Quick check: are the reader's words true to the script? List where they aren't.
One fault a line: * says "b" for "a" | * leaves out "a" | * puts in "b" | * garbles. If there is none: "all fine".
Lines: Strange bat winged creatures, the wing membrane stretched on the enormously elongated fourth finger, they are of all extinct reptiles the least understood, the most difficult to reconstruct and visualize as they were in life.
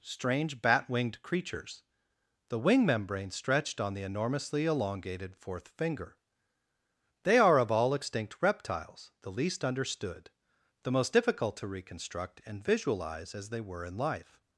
all fine